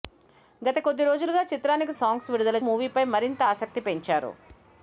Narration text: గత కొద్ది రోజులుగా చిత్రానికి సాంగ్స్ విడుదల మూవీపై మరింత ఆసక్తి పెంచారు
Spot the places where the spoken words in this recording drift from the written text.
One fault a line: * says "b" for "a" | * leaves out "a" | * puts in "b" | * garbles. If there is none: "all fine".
all fine